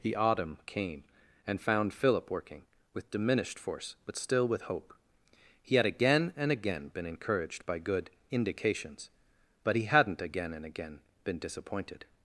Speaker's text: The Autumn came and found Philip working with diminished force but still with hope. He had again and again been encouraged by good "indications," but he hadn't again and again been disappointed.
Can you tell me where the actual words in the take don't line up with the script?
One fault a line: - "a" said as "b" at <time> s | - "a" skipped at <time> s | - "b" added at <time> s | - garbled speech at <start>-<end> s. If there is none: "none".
none